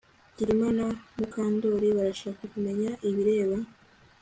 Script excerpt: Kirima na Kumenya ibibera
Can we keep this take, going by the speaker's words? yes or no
no